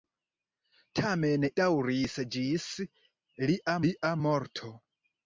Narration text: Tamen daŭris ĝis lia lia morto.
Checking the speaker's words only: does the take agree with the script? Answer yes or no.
yes